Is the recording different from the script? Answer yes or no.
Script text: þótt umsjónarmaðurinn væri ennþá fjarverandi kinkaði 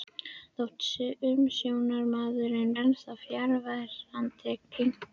yes